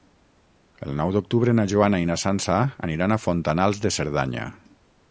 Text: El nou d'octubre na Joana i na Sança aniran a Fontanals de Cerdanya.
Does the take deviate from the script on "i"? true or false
false